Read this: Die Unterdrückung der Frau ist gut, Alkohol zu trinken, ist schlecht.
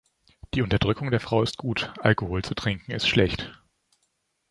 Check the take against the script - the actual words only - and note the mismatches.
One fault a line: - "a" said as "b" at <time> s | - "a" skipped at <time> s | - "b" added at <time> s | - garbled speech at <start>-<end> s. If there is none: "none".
none